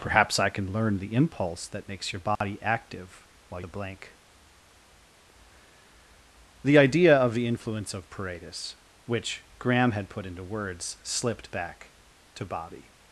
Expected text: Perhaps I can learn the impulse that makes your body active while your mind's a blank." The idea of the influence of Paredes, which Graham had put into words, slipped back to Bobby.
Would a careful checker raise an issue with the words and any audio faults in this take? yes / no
yes